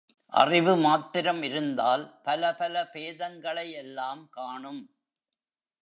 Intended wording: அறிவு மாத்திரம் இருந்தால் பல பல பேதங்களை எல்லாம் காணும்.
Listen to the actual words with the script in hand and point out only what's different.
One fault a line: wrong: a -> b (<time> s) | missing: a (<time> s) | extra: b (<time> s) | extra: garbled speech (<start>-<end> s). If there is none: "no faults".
no faults